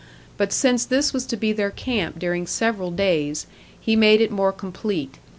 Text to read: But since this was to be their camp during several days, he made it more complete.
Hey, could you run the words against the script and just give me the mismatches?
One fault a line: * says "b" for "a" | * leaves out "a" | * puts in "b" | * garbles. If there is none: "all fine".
all fine